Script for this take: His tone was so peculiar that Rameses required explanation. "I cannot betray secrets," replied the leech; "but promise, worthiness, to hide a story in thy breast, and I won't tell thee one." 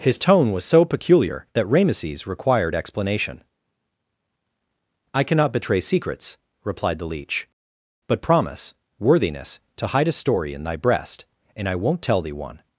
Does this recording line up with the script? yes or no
yes